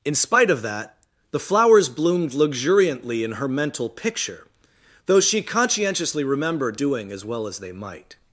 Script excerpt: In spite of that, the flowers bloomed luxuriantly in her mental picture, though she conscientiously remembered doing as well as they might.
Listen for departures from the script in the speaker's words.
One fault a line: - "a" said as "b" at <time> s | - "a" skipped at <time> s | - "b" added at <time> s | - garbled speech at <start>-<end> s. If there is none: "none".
none